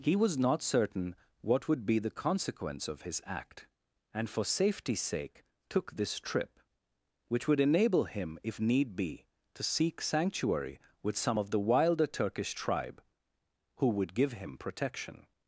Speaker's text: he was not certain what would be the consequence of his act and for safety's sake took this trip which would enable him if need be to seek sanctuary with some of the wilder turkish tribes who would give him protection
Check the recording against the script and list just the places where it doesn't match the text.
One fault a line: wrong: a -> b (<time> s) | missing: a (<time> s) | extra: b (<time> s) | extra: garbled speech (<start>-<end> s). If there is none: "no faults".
wrong: tribes -> tribe (12.5 s)